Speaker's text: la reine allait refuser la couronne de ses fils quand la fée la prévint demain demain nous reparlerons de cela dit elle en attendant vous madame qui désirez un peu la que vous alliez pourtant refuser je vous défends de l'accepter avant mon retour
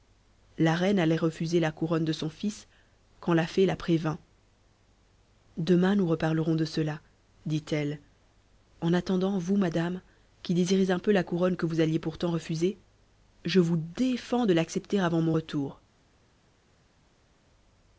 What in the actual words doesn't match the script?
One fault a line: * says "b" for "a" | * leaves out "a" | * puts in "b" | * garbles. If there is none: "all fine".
* says "son" for "ses"
* leaves out "demain"
* puts in "couronne"